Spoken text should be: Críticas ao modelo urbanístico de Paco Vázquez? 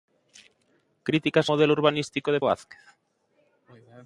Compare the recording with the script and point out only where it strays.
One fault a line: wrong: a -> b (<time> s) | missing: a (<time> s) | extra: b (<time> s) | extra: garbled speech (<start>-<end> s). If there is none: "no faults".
missing: ao (1.5 s)
missing: Paco (2.4 s)